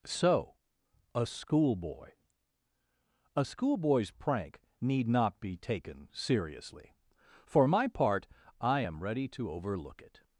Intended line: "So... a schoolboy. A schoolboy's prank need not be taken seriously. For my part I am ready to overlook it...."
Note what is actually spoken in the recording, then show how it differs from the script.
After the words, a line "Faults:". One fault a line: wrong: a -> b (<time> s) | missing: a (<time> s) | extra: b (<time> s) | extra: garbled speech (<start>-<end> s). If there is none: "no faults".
"So... a schoolboy. A schoolboy's prank need not be taken seriously. For my part I am ready to overlook it...."
Faults:
no faults